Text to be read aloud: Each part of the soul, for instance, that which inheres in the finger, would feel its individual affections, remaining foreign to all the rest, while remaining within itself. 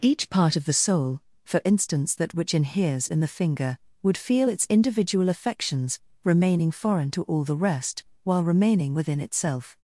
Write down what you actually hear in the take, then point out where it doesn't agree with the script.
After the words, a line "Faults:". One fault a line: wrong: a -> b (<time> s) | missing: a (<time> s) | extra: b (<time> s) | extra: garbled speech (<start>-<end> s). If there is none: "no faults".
Each part of the soul, for instance, that which inheres in the finger, would feel its individual affections, remaining foreign to all the rest, while remaining within itself.
Faults:
no faults